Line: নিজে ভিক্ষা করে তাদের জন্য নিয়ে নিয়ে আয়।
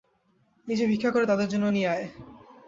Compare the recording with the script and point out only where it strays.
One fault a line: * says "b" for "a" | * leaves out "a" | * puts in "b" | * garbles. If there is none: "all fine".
* leaves out "নিয়ে"